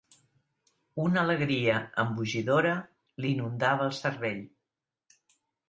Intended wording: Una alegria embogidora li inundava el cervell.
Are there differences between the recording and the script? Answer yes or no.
no